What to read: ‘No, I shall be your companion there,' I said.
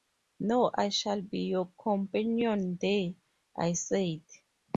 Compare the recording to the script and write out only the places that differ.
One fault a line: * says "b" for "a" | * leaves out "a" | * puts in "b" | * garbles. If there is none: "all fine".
all fine